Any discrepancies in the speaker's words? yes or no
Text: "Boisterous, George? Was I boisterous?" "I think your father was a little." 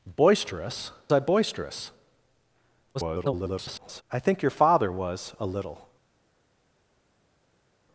yes